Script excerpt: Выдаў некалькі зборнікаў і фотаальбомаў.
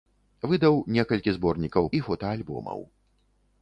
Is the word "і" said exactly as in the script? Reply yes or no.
yes